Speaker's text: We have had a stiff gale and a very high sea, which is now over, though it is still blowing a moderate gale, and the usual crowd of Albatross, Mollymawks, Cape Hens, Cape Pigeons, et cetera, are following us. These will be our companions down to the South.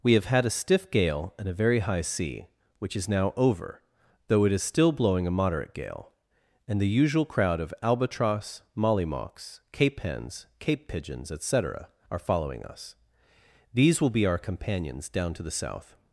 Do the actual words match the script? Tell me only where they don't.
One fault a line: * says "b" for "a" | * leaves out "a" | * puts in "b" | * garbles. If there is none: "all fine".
all fine